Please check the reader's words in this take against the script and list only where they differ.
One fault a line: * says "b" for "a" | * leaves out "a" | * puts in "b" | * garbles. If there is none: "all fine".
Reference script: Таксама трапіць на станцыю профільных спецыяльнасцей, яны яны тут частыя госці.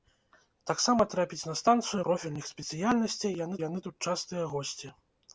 all fine